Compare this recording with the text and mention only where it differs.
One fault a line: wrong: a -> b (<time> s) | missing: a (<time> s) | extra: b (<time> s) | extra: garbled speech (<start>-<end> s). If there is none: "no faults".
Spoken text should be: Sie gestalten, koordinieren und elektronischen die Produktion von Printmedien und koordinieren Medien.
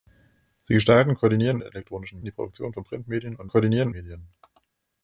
no faults